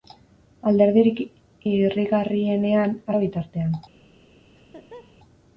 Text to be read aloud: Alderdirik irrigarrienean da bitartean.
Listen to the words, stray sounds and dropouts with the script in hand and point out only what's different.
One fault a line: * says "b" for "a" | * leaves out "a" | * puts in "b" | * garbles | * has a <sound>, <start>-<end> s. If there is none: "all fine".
* has a laugh, 4.6-5.2 s